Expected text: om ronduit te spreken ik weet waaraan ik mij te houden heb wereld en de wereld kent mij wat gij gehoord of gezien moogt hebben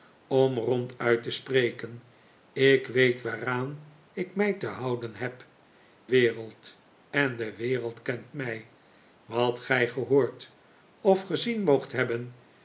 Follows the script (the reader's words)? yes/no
yes